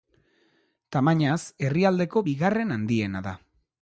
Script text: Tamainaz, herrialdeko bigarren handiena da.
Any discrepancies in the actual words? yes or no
no